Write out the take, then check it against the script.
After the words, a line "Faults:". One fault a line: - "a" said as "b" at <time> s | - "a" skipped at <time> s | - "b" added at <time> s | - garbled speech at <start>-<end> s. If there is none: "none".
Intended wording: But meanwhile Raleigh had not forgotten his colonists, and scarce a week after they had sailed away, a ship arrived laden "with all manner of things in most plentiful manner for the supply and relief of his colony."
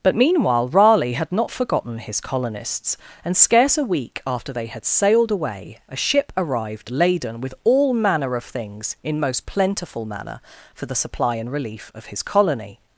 But meanwhile Raleigh had not forgotten his colonists, and scarce a week after they had sailed away, a ship arrived laden "with all manner of things in most plentiful manner for the supply and relief of his colony."
Faults:
none